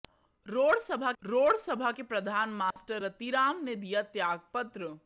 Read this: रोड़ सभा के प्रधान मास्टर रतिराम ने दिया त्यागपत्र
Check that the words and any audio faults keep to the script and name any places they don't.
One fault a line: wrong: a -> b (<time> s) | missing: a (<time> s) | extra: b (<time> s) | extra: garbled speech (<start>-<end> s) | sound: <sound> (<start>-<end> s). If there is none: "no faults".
extra: रोड़ सभा (1.2 s)
sound: dropout (2.7-2.8 s)